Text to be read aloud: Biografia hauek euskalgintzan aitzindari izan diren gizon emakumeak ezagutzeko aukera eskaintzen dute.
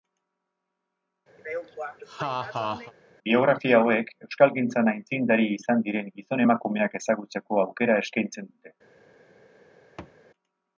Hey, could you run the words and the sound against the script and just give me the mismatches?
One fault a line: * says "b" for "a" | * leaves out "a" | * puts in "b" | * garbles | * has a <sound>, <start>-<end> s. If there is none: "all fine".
* has a laugh, 1.4-2.9 s
* has a thud, 10.0-10.2 s